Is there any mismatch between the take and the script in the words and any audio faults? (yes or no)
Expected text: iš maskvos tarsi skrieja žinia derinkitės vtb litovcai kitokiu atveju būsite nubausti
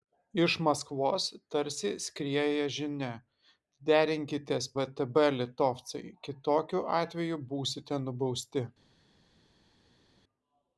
no